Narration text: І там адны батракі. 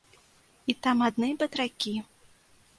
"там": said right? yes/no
yes